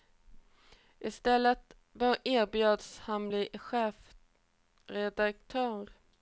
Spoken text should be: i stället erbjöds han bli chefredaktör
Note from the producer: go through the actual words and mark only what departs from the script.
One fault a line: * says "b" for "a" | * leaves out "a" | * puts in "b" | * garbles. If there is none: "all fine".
all fine